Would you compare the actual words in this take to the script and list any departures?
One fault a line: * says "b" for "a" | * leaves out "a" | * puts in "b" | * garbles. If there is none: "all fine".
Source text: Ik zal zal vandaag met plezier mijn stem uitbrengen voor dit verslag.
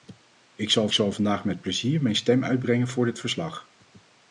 all fine